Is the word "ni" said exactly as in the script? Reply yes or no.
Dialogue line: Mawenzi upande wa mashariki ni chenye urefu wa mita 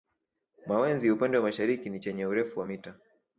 yes